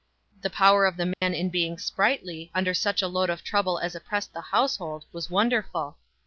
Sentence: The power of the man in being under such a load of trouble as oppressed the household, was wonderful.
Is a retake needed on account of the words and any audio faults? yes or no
yes